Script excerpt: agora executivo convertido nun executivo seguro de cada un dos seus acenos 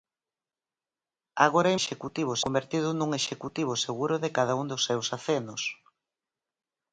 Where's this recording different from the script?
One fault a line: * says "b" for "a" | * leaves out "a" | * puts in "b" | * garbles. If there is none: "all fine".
all fine